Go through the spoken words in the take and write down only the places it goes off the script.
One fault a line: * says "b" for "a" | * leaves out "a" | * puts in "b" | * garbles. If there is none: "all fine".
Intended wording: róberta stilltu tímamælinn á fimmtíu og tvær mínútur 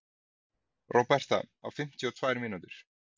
* leaves out "stilltu tímamælinn"